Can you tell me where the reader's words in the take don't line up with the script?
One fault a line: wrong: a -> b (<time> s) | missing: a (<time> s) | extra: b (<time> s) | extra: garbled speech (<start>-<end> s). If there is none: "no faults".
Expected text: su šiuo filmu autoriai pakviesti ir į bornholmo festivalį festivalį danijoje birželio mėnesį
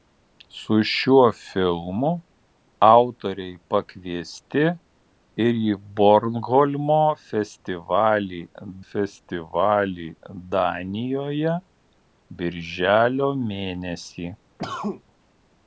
no faults